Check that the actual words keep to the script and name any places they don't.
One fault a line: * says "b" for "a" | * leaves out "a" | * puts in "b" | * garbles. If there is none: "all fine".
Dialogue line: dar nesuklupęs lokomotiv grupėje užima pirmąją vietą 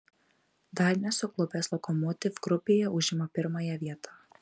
all fine